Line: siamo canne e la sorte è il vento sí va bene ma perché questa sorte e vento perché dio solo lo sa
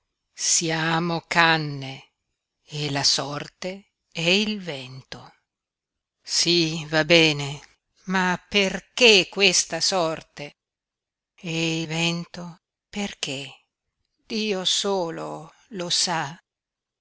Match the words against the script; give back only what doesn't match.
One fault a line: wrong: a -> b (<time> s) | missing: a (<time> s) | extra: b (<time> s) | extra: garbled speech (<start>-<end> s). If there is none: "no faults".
no faults